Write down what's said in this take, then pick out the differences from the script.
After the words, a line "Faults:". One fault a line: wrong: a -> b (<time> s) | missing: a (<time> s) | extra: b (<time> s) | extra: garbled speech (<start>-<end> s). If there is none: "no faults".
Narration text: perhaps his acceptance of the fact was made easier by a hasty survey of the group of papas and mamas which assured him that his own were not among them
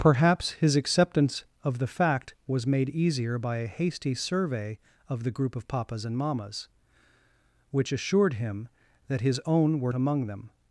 perhaps his acceptance of the fact was made easier by a hasty survey of the group of papas and mamas which assured him that his own were among them
Faults:
missing: not (9.9 s)